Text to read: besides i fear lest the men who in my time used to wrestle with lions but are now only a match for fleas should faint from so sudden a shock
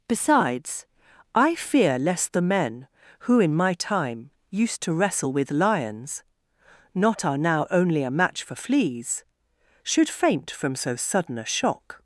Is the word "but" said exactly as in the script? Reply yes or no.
no